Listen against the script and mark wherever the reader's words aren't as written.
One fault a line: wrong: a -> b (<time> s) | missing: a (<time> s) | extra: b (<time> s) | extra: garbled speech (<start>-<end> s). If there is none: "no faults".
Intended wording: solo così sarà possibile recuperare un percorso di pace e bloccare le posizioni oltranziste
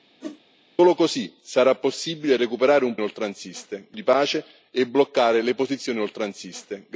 wrong: percorso -> oltranziste (3.0 s)